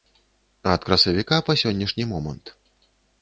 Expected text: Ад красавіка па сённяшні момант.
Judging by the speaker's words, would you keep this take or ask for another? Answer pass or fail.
pass